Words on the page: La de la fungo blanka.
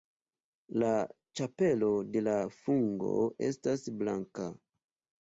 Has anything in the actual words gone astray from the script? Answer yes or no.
yes